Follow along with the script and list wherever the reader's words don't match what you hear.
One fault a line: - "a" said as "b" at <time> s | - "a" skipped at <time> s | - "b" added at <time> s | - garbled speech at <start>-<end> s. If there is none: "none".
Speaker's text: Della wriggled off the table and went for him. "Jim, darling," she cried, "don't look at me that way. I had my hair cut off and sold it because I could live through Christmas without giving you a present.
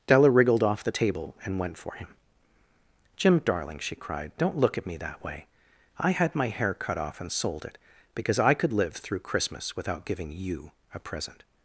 none